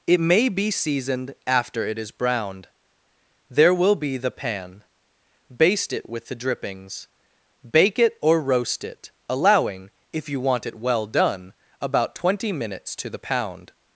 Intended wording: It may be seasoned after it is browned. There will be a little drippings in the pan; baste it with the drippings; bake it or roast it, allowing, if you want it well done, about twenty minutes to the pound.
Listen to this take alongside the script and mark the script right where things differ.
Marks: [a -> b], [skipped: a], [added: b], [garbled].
It may be seasoned after it is browned. There will be [skipped: a little drippings in] the pan; baste it with the drippings; bake it or roast it, allowing, if you want it well done, about twenty minutes to the pound.